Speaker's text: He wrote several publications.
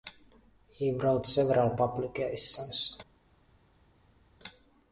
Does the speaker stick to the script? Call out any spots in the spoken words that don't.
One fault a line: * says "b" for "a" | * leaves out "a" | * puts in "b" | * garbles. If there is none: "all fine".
all fine